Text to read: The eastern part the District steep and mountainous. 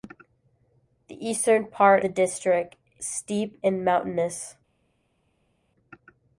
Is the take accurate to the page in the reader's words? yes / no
yes